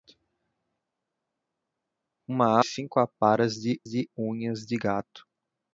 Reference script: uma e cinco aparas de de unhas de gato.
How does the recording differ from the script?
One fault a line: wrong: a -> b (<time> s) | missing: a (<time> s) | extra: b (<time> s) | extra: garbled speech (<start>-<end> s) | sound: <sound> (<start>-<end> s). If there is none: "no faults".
no faults